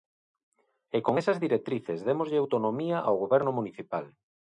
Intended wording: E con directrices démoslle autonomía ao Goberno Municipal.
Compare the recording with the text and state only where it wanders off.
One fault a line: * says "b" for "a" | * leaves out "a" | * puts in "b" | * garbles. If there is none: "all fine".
* puts in "esas"